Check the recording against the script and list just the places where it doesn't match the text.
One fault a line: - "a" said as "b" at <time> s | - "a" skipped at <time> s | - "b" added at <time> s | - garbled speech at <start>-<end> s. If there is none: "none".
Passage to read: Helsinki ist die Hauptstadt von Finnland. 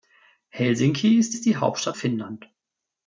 - "ist" added at 1.3 s
- "von" skipped at 2.0 s